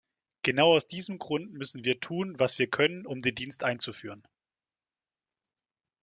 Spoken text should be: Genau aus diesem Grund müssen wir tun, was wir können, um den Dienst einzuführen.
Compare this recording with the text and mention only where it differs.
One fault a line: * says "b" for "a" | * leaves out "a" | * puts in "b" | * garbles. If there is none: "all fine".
all fine